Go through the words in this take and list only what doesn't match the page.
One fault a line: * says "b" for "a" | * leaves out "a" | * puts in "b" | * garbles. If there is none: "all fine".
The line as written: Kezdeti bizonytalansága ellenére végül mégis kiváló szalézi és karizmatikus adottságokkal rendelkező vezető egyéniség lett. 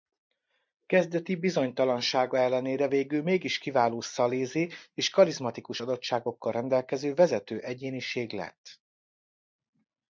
all fine